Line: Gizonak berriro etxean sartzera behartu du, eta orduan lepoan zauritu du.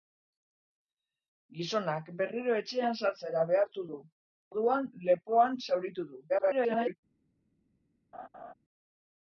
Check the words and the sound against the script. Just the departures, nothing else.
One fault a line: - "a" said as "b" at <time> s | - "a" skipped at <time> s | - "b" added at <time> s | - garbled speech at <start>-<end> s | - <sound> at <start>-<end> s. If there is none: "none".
- "eta" skipped at 4.0 s
- garbled speech at 6.3-7.0 s
- laugh at 8.1-8.5 s